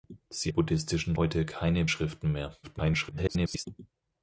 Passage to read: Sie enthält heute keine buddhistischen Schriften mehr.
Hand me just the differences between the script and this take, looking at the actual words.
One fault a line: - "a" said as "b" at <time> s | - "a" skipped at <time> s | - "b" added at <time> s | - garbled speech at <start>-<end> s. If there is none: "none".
- "enthält" said as "buddhistischen" at 0.5 s
- "buddhistischen" skipped at 1.8 s
- garbled speech at 2.6-3.7 s